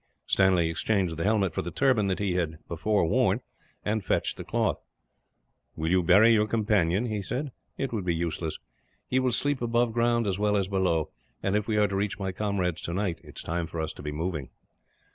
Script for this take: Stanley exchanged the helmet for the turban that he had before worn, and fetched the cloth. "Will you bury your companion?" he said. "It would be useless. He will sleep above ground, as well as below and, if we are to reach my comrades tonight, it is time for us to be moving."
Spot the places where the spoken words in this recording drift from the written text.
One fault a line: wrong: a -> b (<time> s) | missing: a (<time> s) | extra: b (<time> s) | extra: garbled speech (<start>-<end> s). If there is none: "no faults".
no faults